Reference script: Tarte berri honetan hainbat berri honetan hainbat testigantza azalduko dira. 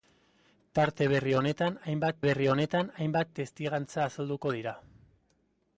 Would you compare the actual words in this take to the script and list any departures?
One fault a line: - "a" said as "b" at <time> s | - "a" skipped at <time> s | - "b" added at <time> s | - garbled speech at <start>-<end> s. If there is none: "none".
none